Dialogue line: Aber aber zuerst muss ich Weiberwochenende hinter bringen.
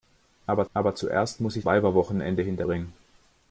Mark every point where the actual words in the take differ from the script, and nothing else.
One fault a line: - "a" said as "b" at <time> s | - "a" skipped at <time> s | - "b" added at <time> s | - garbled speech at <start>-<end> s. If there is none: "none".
none